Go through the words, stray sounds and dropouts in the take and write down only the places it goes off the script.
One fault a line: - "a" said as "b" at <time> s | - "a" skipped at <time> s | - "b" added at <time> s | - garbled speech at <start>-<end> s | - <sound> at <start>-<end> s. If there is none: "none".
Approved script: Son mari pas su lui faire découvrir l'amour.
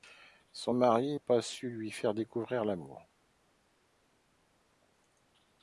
none